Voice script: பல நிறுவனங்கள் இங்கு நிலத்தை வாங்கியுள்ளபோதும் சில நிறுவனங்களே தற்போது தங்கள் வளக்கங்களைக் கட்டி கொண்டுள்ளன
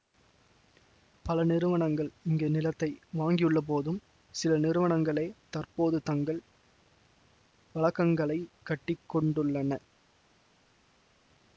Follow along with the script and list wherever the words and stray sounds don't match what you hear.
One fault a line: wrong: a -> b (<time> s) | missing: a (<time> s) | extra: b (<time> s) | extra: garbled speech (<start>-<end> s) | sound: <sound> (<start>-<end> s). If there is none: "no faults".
no faults